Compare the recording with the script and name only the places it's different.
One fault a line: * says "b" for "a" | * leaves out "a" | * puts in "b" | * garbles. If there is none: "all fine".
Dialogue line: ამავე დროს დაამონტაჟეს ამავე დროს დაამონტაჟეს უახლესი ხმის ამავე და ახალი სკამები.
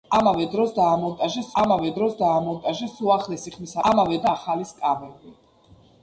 all fine